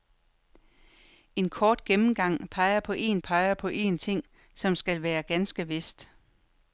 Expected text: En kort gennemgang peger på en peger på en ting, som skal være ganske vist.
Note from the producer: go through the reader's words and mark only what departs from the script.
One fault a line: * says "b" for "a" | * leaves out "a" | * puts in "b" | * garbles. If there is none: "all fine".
all fine